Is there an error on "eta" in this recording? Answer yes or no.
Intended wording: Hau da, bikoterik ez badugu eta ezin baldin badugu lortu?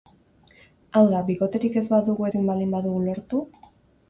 yes